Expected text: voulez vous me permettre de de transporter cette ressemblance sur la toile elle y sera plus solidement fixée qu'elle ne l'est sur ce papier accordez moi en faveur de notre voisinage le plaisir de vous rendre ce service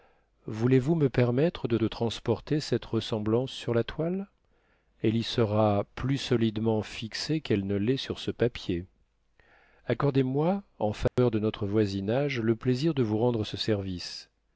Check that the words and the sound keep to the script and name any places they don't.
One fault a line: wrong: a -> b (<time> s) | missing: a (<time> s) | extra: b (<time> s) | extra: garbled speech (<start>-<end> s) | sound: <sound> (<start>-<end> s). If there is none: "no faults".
sound: dropout (11.1-11.2 s)